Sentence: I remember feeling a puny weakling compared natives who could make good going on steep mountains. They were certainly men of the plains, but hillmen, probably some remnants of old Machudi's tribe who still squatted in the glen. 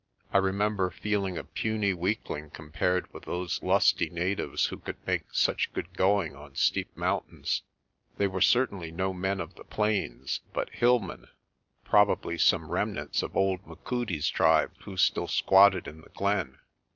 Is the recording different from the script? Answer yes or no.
yes